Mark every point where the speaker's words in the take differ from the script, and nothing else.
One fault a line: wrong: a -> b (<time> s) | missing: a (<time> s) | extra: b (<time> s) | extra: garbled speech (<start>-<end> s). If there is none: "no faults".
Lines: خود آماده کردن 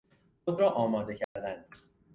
extra: را (0.6 s)